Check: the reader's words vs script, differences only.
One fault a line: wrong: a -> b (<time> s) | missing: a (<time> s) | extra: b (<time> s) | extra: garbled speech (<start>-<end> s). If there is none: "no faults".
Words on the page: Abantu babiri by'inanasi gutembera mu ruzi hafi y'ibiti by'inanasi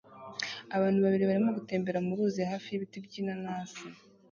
wrong: by'inanasi -> barimo (1.3 s)